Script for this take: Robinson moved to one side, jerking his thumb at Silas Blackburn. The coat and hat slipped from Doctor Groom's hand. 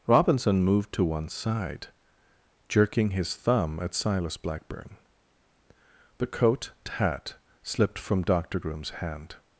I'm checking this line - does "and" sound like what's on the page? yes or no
no